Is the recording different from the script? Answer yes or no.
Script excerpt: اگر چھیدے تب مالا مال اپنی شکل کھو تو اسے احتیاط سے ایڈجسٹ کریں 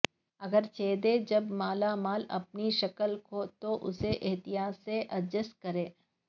yes